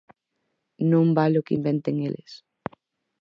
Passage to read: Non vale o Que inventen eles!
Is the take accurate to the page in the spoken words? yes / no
yes